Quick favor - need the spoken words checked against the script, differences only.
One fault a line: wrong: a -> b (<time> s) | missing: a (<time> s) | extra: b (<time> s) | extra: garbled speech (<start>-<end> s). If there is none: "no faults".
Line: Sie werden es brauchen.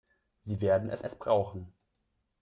extra: es (1.0 s)